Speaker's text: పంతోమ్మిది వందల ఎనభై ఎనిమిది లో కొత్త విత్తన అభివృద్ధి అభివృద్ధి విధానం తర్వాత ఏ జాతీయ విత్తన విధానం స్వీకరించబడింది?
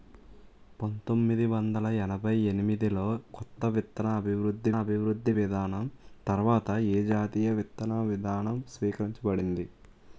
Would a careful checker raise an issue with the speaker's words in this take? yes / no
no